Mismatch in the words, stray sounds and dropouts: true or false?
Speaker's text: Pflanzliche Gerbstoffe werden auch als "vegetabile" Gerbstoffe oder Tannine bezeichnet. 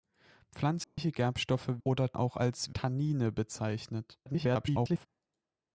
true